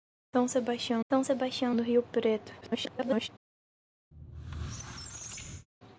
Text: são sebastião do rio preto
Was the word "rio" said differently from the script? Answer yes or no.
no